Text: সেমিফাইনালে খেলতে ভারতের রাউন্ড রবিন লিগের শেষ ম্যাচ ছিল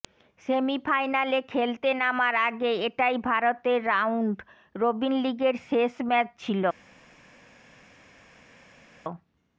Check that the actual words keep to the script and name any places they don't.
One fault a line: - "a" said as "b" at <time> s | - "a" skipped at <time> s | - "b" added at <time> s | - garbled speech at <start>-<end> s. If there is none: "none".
- "নামার আগে এটাই" added at 2.0 s